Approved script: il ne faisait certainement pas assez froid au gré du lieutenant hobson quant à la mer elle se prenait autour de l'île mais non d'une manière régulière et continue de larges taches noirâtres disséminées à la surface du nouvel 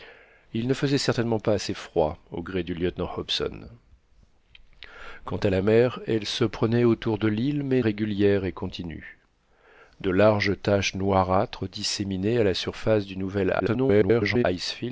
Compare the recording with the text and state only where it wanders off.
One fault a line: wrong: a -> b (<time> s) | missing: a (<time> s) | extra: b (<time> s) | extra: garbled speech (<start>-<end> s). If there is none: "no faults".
missing: non d'une manière (7.8 s)
extra: garbled speech (13.6-14.4 s)